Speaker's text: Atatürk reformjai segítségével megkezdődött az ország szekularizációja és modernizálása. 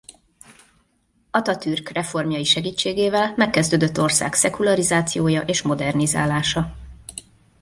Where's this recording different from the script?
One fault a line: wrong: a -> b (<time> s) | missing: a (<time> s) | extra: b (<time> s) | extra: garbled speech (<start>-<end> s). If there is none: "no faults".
missing: az (4.0 s)